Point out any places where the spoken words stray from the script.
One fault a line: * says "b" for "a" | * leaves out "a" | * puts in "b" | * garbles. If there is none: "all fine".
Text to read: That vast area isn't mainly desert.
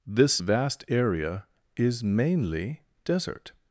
* says "This" for "That"
* says "is" for "isn't"